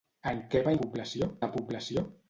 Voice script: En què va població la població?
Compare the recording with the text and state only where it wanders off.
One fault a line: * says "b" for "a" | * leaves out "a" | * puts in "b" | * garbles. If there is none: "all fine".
all fine